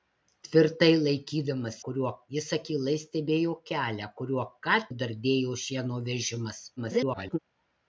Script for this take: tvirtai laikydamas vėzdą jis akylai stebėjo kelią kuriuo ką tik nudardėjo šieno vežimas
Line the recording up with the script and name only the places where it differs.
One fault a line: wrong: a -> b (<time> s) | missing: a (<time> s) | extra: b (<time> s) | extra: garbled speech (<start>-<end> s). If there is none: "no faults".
wrong: vėzdą -> kuriuo (1.9 s)
missing: tik (4.8 s)
extra: garbled speech (6.8-7.4 s)